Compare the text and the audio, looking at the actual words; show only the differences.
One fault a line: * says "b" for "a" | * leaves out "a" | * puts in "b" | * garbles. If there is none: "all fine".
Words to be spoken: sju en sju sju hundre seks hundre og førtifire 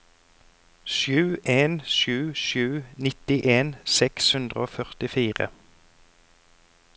* says "nittien" for "hundre"